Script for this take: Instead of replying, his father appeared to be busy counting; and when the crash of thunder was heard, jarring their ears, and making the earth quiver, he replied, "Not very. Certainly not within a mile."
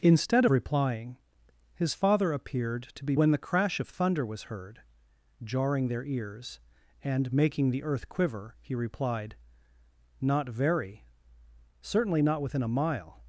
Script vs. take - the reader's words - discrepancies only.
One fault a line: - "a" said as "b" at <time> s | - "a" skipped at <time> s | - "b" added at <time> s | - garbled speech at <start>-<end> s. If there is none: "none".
- "of" skipped at 0.5 s
- "busy counting and" skipped at 3.1 s